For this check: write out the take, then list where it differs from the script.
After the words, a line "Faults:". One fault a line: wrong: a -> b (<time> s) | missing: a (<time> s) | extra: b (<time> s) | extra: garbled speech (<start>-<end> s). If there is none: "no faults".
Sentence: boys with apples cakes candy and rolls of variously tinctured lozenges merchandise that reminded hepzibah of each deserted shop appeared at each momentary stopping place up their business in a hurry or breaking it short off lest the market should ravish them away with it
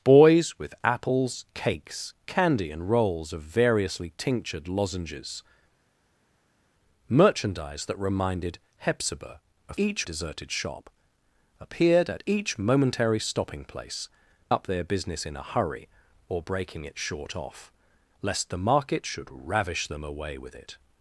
boys with apples cakes candy and rolls of variously tinctured lozenges merchandise that reminded hepzibah of each deserted shop appeared at each momentary stopping place up their business in a hurry or breaking it short off lest the market should ravish them away with it
Faults:
no faults